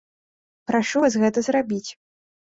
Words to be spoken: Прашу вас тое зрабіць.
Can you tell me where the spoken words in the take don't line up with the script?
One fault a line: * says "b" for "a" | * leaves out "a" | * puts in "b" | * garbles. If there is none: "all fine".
* says "гэта" for "тое"